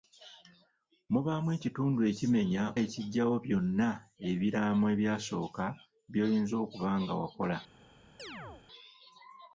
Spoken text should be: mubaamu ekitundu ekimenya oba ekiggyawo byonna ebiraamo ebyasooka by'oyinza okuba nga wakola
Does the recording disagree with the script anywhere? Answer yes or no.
yes